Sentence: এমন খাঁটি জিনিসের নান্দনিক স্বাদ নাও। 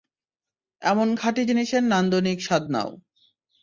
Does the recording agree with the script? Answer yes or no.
yes